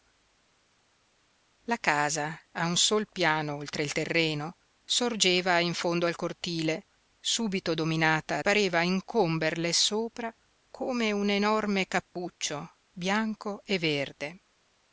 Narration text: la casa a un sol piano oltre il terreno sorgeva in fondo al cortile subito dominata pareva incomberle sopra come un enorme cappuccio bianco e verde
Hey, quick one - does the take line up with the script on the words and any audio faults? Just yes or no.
yes